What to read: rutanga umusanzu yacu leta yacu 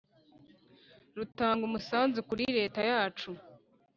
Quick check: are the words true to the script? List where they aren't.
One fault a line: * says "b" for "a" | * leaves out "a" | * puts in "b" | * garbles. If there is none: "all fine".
* says "kuri" for "yacu"